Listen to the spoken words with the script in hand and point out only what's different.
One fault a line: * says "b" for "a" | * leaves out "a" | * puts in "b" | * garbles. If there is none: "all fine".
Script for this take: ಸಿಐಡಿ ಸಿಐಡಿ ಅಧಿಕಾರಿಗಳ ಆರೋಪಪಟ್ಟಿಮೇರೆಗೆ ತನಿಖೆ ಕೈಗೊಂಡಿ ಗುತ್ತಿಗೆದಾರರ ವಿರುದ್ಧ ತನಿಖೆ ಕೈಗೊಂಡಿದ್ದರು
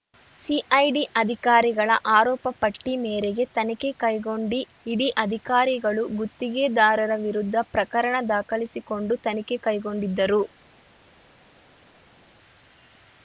* leaves out "ಸಿಐಡಿ"
* puts in "ಇಡಿ ಅಧಿಕಾರಿಗಳು"
* puts in "ಪ್ರಕರಣ ದಾಖಲಿಸಿಕೊಂಡು"